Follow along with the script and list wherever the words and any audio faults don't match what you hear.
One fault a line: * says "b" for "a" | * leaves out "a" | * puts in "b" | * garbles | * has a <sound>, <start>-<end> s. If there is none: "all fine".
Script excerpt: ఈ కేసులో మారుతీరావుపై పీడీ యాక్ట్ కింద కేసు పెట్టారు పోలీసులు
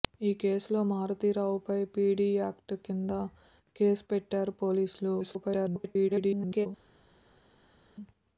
* garbles